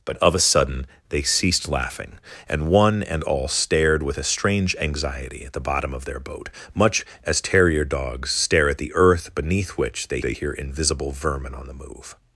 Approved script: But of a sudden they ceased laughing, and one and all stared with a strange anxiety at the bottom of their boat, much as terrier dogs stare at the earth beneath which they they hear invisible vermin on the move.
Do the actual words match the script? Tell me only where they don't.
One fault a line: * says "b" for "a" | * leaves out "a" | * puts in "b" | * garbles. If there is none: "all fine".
all fine